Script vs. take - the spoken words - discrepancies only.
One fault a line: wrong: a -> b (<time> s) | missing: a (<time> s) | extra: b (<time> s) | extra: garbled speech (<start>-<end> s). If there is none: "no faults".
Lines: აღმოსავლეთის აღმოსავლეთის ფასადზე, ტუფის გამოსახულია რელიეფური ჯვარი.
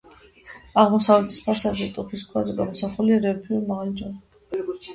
missing: აღმოსავლეთის (1.4 s)
extra: ქვაზე (2.3 s)
extra: მაღალი (3.7 s)